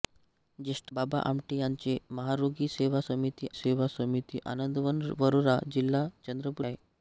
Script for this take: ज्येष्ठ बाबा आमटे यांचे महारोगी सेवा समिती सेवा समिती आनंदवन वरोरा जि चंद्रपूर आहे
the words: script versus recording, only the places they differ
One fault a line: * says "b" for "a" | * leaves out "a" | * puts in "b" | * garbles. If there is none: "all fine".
all fine